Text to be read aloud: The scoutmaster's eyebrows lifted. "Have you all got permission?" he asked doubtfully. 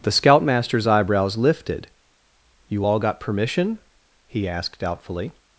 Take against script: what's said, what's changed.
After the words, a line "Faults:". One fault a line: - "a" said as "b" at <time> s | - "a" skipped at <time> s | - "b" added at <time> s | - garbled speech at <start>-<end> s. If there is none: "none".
The scoutmaster's eyebrows lifted. "you all got permission?" he asked doubtfully.
Faults:
- "Have" skipped at 1.9 s